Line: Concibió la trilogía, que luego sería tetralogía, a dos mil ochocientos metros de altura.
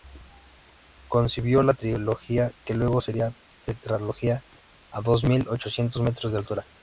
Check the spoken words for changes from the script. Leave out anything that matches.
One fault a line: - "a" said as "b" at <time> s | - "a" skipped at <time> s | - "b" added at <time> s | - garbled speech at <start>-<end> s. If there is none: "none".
none